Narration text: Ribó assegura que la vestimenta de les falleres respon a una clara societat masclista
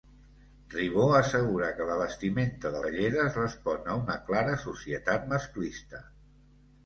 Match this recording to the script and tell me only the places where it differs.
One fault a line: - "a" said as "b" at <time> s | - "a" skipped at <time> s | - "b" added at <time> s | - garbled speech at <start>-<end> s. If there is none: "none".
- "les" skipped at 2.8 s